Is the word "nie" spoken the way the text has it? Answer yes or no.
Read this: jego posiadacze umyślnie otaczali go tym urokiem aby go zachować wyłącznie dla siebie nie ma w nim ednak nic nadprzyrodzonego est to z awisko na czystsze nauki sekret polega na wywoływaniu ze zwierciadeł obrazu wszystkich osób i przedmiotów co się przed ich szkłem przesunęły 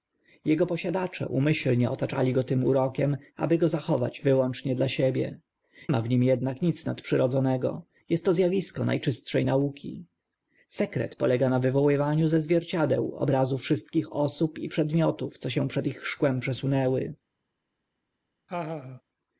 no